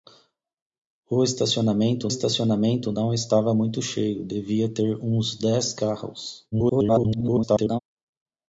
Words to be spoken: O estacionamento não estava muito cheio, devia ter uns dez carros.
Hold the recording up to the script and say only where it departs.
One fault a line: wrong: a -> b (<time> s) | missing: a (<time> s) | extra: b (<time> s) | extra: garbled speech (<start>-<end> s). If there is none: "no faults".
extra: estacionamento (2.1 s)
extra: garbled speech (6.5-7.8 s)